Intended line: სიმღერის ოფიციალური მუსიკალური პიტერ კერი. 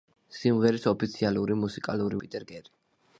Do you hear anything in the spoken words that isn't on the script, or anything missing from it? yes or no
no